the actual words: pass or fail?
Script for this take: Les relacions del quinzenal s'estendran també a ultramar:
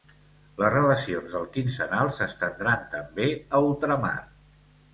pass